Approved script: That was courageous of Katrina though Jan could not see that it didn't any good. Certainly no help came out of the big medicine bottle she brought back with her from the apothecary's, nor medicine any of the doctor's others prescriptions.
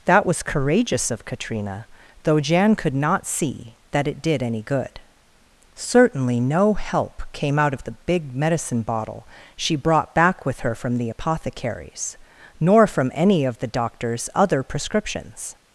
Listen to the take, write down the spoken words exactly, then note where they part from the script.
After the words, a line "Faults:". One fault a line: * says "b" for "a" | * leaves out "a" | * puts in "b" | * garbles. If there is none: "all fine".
That was courageous of Katrina though Jan could not see that it did any good. Certainly no help came out of the big medicine bottle she brought back with her from the apothecary's, nor from any of the doctor's other prescriptions.
Faults:
* says "did" for "didn't"
* says "from" for "medicine"
* says "other" for "others"